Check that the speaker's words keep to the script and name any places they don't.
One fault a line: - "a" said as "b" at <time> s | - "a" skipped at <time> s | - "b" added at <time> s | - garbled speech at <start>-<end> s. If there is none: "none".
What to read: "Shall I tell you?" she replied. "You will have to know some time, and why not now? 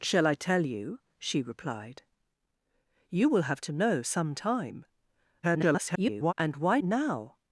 - garbled speech at 5.4-6.3 s
- "not" skipped at 6.8 s